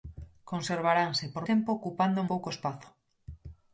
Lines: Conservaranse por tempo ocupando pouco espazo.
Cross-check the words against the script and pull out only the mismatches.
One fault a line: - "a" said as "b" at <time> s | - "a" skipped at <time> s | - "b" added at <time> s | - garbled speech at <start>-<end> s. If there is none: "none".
none